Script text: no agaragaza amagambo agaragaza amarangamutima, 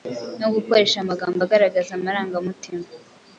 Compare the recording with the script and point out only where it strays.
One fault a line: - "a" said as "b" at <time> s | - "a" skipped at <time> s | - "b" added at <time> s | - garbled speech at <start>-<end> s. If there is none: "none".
- "agaragaza" said as "gukoresha" at 0.6 s